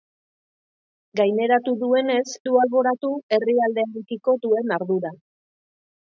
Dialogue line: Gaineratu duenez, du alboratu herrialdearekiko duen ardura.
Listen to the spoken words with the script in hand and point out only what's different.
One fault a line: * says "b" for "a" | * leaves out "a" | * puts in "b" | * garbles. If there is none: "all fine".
all fine